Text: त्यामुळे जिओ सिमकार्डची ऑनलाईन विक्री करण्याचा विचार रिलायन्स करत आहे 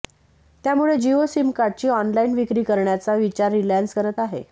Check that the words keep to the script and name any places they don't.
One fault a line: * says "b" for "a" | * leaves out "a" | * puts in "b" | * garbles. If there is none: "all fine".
all fine